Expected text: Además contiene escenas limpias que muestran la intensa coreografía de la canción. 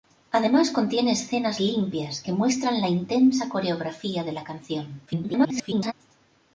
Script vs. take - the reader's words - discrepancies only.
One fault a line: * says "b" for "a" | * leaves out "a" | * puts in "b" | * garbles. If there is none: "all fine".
* garbles